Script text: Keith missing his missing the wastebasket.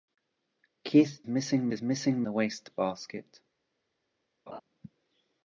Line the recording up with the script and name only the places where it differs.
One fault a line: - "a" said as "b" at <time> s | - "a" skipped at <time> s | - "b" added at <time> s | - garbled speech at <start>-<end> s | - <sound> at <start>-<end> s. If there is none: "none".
- laugh at 4.5-4.6 s